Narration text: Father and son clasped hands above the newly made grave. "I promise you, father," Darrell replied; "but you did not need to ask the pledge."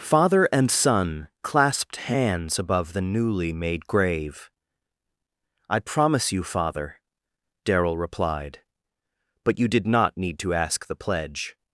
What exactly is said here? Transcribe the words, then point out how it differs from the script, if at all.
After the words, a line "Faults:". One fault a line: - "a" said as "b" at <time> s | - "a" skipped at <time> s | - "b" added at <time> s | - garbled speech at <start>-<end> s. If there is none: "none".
Father and son clasped hands above the newly made grave. "I promise you, father," Darrell replied; "but you did not need to ask the pledge."
Faults:
none